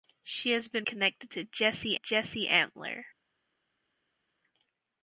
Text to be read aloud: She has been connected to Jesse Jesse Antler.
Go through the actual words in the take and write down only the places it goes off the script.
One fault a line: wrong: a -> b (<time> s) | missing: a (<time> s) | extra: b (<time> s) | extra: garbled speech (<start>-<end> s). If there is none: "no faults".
no faults